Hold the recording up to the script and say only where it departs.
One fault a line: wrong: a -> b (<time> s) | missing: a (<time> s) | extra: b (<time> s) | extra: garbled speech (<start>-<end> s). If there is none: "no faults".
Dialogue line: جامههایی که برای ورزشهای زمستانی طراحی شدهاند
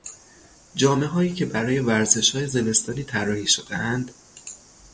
no faults